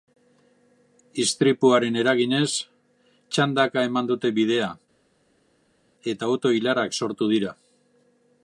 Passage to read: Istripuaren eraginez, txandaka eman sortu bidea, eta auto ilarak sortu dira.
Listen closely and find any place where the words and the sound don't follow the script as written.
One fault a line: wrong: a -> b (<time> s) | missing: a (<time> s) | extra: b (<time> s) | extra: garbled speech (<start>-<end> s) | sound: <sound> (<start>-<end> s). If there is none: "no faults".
wrong: sortu -> dute (4.1 s)